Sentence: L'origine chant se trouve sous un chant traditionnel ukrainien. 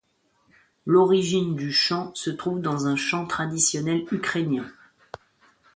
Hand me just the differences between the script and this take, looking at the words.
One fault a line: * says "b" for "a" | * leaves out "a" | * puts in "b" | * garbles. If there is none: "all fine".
* puts in "du"
* says "dans" for "sous"